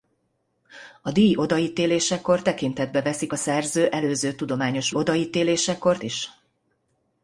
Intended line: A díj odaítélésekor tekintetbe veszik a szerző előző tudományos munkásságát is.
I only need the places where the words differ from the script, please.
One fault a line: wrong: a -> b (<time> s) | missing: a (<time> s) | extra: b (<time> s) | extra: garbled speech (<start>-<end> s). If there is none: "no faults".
wrong: munkásságát -> odaítélésekor (4.9 s)